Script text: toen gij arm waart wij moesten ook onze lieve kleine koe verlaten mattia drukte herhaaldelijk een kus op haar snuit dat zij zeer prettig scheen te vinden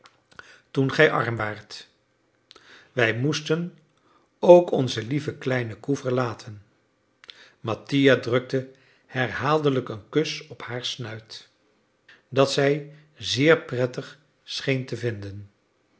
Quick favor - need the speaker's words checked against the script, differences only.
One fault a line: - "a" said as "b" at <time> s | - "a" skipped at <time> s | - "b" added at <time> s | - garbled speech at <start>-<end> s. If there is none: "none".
none